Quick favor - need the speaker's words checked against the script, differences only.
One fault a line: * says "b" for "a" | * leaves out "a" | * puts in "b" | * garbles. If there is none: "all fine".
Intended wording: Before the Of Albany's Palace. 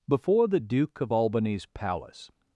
* puts in "Duke"